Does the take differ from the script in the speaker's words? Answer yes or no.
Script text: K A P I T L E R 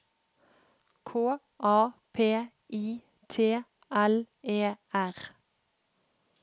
no